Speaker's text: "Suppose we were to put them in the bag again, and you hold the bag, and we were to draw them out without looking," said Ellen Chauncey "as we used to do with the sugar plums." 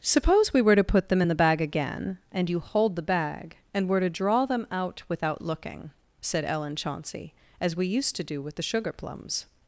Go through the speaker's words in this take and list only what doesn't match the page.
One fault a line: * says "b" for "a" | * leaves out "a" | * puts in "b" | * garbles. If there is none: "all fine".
* leaves out "we"